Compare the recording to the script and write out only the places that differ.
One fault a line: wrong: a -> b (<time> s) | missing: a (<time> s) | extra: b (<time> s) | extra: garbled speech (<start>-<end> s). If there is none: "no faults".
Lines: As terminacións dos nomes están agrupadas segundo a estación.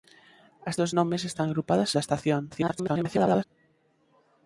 missing: terminacións (0.8 s)
missing: segundo (1.9 s)
extra: garbled speech (2.5-3.4 s)